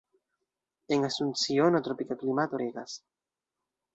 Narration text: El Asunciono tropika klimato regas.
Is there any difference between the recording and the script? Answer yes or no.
yes